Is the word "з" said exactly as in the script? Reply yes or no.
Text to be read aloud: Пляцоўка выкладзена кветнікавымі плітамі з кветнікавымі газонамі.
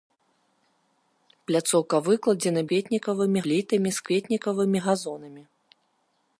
yes